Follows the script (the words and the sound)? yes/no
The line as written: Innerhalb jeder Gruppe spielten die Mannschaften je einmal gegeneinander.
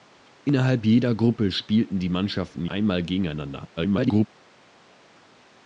no